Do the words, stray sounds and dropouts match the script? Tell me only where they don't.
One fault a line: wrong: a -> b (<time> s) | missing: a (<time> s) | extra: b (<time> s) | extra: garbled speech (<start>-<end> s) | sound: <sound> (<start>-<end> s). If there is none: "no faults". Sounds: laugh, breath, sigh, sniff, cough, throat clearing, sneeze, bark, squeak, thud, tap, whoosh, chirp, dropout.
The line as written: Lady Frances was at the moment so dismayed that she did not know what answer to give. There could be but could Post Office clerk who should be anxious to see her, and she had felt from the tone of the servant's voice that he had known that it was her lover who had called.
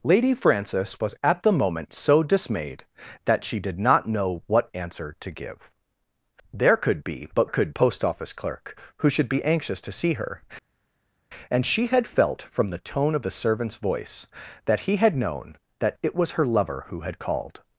no faults